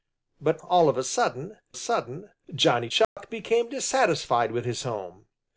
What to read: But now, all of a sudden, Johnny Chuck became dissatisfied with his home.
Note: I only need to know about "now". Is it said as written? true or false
false